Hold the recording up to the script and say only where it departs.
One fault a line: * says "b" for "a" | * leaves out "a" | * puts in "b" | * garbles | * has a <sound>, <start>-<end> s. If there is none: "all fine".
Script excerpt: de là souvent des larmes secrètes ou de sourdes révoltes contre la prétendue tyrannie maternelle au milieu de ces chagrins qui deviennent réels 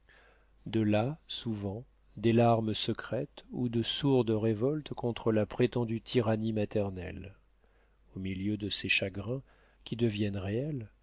all fine